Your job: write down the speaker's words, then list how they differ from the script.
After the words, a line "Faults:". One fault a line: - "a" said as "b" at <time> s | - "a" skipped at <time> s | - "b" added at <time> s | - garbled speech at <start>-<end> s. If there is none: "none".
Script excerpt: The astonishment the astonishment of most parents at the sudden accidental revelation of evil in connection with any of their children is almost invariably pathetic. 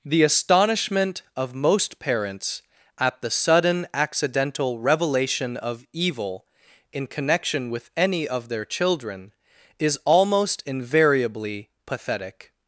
The astonishment of most parents at the sudden accidental revelation of evil in connection with any of their children is almost invariably pathetic.
Faults:
- "the astonishment" skipped at 1.2 s